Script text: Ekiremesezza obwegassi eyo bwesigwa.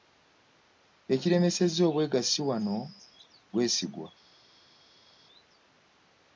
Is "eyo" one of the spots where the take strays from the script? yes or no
yes